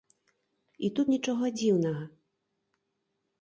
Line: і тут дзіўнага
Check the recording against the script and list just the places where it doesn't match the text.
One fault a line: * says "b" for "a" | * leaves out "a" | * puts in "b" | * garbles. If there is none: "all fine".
* puts in "нічога"